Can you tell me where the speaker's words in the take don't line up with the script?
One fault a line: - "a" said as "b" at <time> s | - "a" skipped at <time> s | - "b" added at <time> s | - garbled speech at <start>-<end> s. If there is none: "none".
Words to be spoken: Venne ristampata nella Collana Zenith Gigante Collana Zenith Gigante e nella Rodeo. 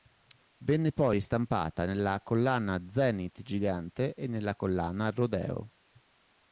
- "poi" added at 0.9 s
- "Collana Zenith Gigante" skipped at 4.1 s
- "Collana" added at 4.5 s